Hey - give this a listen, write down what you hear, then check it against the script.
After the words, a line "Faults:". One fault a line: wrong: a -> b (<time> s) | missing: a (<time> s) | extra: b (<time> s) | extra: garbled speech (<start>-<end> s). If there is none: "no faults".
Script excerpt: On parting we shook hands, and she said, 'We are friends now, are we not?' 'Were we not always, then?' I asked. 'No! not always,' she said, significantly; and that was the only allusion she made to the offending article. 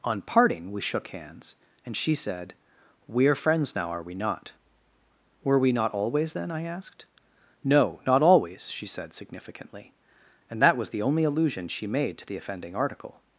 On parting we shook hands, and she said, 'We are friends now, are we not?' 'Were we not always, then?' I asked. 'No! not always,' she said, significantly; and that was the only allusion she made to the offending article.
Faults:
no faults